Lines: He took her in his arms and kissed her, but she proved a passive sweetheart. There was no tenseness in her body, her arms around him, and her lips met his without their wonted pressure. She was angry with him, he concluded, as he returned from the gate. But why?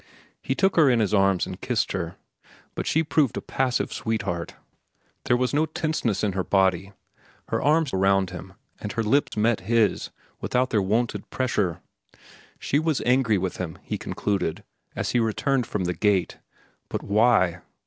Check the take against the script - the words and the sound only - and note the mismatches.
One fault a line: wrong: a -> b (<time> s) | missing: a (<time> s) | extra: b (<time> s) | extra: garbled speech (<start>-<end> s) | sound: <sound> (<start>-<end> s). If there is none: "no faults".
sound: dropout (9.3-9.3 s)